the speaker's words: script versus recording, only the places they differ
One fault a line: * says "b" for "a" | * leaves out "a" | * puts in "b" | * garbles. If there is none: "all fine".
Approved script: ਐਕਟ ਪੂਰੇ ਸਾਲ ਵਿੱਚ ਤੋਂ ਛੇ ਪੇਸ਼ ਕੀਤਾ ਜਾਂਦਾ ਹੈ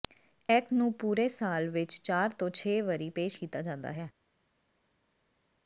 * puts in "ਨੂੰ"
* puts in "ਚਾਰ"
* puts in "ਵਾਰੀ"